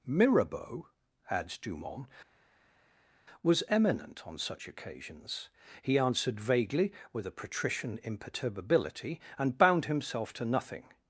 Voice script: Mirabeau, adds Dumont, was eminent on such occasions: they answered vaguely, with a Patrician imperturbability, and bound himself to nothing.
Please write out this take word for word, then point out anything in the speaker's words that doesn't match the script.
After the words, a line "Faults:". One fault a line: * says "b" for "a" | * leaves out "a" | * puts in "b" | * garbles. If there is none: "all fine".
Mirabeau, adds Dumont, was eminent on such occasions: he answered vaguely, with a Patrician imperturbability, and bound himself to nothing.
Faults:
* says "he" for "they"